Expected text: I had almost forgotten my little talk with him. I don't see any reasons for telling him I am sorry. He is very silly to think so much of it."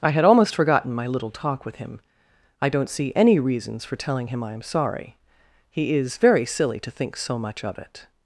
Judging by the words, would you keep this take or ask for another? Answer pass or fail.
pass